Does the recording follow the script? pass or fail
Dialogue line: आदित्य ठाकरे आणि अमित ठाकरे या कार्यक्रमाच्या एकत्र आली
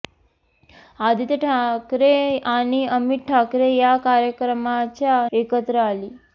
pass